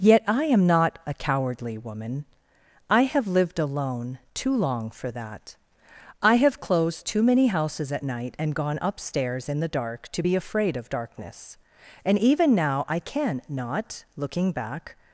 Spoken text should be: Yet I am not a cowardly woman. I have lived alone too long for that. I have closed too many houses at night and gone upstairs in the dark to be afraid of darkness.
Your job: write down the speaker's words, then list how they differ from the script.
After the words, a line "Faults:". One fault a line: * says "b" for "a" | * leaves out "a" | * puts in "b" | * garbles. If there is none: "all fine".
Yet I am not a cowardly woman. I have lived alone too long for that. I have closed too many houses at night and gone upstairs in the dark to be afraid of darkness. And even now I can not, looking back
Faults:
* puts in "And even now I can not looking back"